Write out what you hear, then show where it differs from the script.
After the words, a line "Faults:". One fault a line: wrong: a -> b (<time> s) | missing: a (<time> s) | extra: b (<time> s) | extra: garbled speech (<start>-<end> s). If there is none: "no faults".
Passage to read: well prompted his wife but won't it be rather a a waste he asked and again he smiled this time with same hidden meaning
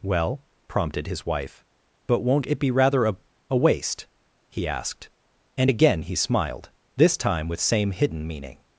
well prompted his wife but won't it be rather a a waste he asked and again he smiled this time with same hidden meaning
Faults:
no faults